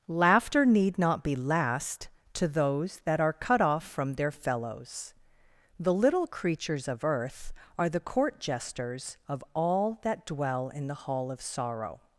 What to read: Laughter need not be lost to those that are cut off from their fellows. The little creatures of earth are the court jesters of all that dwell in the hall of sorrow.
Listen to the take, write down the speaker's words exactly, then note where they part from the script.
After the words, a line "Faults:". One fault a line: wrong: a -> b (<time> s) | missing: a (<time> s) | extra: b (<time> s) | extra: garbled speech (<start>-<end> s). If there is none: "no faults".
Laughter need not be last to those that are cut off from their fellows. The little creatures of earth are the court jesters of all that dwell in the hall of sorrow.
Faults:
wrong: lost -> last (1.4 s)